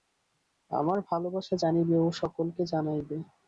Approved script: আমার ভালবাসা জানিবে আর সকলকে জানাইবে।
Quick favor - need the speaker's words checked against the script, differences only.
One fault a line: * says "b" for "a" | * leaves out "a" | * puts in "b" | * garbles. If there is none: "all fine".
* says "ও" for "আর"